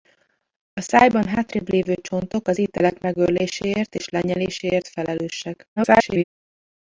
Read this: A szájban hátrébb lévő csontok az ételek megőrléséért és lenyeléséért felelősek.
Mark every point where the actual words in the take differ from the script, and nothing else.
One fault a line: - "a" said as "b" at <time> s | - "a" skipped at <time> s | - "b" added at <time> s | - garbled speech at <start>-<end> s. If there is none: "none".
- garbled speech at 5.8-6.2 s